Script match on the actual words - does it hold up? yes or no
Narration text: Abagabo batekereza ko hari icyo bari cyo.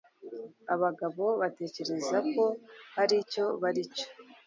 yes